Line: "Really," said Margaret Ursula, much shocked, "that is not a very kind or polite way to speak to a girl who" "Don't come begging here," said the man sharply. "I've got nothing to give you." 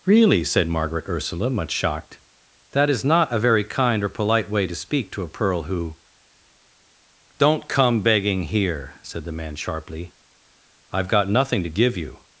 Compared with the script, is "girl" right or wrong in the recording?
wrong